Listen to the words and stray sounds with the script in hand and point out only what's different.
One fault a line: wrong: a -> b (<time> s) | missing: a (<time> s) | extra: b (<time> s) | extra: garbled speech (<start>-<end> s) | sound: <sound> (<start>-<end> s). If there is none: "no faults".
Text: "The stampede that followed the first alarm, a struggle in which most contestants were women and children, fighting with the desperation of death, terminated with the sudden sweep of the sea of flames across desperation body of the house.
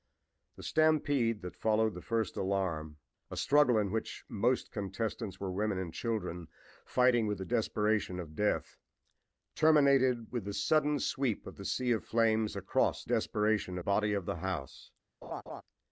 sound: laugh (15.2-15.6 s)